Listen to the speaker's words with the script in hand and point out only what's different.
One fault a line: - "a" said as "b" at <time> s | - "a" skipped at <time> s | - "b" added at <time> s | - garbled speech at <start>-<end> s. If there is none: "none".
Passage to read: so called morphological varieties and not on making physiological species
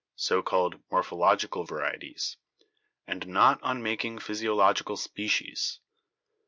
none